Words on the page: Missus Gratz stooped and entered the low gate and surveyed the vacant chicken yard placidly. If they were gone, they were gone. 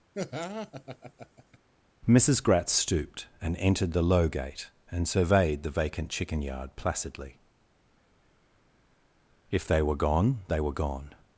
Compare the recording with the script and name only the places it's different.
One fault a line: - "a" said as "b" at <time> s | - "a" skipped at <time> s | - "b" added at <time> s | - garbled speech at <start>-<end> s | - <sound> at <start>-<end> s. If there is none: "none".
- laugh at 0.1-1.6 s